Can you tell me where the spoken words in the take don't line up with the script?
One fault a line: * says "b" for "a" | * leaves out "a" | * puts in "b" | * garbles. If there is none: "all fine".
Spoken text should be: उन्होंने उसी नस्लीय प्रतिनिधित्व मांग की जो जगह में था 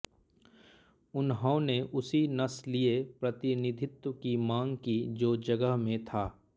* puts in "की"